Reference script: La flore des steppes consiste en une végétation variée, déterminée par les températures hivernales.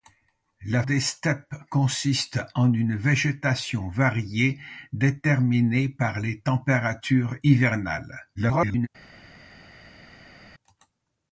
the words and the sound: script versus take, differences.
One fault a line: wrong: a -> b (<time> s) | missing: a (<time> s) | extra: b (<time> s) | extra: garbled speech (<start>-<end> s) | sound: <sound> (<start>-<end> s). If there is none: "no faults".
missing: flore (0.8 s)
extra: garbled speech (8.4-8.9 s)